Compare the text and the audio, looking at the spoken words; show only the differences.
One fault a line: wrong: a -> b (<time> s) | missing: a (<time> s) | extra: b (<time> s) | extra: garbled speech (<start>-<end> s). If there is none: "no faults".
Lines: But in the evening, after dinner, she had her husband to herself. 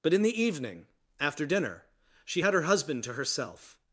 no faults